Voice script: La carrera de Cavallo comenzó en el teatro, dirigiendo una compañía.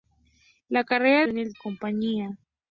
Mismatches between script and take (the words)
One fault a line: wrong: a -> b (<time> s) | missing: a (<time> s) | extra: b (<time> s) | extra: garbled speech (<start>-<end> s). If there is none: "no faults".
missing: de Cavallo comenzó (1.2 s)
missing: teatro dirigiendo una (1.5 s)